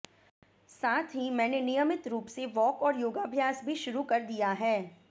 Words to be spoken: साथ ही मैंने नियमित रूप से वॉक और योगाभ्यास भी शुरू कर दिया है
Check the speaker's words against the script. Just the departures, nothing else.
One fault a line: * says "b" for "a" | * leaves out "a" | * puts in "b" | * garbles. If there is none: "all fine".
all fine